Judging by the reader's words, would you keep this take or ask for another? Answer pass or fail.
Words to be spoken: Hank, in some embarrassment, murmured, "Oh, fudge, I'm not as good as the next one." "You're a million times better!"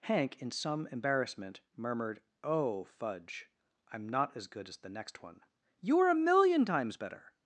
pass